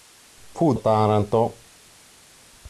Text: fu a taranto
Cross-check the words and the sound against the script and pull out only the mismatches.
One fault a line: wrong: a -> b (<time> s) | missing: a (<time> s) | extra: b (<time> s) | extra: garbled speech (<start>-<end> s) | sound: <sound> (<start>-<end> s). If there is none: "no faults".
no faults